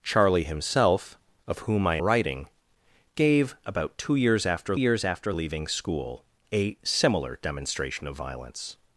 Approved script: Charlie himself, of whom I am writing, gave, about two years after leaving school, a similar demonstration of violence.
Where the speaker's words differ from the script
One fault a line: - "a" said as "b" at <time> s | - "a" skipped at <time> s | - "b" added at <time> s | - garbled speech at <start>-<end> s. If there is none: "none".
- "am" skipped at 2.0 s
- "years after" added at 4.7 s